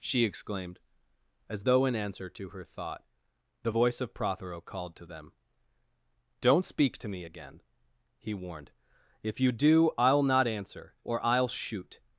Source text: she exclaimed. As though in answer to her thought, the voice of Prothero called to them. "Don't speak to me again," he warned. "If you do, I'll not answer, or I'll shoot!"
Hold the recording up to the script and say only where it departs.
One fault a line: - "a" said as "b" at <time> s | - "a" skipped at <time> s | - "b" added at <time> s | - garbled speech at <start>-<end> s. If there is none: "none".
none